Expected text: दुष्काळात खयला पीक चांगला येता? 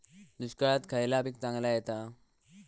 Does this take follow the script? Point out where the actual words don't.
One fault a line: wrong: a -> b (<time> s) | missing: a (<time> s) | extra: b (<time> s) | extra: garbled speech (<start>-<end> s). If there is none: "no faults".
no faults